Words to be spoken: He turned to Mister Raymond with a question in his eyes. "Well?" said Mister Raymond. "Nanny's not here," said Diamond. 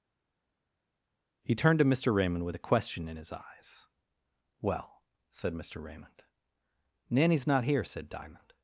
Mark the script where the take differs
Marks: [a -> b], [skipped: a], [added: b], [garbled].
He turned to Mister Raymond with a question in his eyes. "Well?" said Mister Raymond. "Nanny's not here," said Diamond.